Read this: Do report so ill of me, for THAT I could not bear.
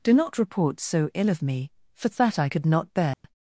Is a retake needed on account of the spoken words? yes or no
yes